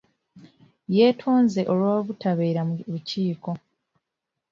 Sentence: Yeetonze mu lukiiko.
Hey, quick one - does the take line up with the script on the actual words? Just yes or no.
no